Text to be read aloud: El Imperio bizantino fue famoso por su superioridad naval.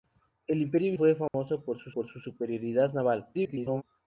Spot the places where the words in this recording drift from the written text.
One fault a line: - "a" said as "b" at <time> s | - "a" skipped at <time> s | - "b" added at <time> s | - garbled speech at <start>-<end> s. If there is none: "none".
- "bizantino" skipped at 0.9 s
- "por su" added at 1.9 s
- garbled speech at 3.3-3.8 s